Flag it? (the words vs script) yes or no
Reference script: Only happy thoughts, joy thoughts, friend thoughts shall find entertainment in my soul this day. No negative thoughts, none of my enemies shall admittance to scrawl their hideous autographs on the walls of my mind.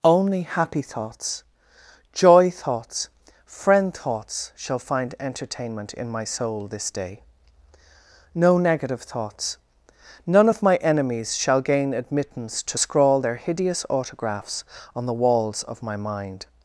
yes